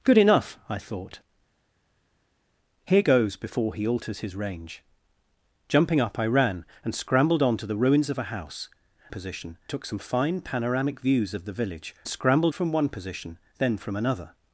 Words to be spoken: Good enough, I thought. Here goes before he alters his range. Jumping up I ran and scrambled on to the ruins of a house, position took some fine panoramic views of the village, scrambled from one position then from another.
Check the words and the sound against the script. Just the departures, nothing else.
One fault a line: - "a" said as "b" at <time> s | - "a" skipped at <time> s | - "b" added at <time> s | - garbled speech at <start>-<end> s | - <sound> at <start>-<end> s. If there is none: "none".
none